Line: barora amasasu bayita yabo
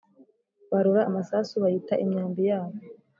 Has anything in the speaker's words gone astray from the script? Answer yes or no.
yes